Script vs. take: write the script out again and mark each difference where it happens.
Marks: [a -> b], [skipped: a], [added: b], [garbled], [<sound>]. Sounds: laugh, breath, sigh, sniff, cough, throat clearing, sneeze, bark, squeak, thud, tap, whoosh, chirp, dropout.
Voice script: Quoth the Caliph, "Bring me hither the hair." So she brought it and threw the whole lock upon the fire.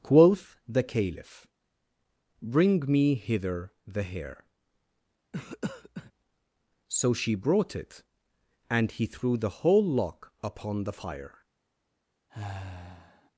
Quoth the Caliph, "Bring me hither the hair." [cough] So she brought it and [added: he] threw the whole lock upon the fire. [sigh]